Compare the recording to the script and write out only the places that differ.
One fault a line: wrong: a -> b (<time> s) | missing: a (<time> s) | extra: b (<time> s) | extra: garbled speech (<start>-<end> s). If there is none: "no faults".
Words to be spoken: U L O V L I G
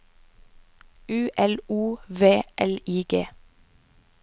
no faults